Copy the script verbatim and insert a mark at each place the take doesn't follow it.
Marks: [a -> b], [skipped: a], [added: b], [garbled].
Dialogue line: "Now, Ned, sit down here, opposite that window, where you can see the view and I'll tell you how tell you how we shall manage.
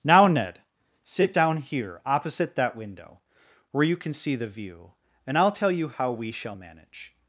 "Now, Ned, sit down here, opposite that window, where you can see the view and I'll tell you how [skipped: tell you how] we shall manage.